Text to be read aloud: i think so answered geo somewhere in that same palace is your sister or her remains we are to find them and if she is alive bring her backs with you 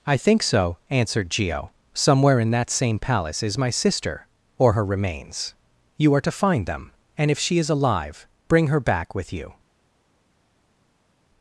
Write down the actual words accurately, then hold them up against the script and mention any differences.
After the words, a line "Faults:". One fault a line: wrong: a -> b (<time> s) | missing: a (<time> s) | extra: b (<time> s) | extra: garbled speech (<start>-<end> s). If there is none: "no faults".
i think so answered geo somewhere in that same palace is my sister or her remains you are to find them and if she is alive bring her back with you
Faults:
wrong: your -> my (3.6 s)
wrong: we -> you (6.0 s)
wrong: backs -> back (8.8 s)